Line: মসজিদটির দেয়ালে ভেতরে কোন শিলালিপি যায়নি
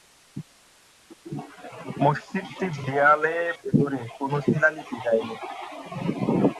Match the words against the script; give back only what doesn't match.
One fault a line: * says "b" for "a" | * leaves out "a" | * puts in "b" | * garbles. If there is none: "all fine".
all fine